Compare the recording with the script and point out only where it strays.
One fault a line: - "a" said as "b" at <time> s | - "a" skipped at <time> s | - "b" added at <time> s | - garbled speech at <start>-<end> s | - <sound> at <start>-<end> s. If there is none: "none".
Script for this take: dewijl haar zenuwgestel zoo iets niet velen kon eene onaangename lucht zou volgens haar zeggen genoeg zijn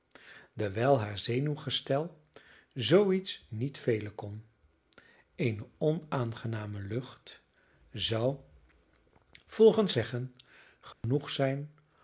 - "haar" skipped at 9.9 s
- dropout at 10.9-11.0 s